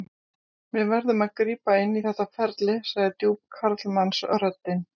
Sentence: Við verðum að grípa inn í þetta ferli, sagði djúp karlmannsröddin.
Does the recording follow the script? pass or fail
pass